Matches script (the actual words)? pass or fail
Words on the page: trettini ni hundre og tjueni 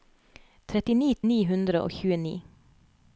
pass